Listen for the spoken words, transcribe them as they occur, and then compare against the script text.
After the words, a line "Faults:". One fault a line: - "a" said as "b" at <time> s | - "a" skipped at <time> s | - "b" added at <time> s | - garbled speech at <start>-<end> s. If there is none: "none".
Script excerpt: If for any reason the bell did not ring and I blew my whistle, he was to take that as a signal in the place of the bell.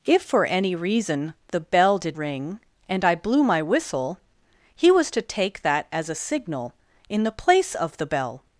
If for any reason the bell did ring and I blew my whistle, he was to take that as a signal in the place of the bell.
Faults:
- "not" skipped at 2.2 s